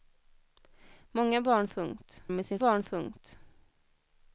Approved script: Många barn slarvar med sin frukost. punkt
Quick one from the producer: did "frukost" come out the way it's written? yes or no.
no